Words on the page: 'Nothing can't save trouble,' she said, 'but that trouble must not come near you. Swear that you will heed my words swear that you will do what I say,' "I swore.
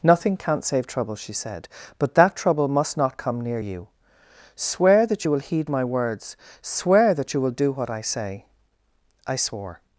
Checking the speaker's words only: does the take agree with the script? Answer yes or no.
yes